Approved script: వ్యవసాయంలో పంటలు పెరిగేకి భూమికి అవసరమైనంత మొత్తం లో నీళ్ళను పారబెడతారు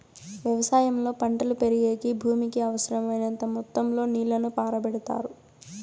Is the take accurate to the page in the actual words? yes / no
yes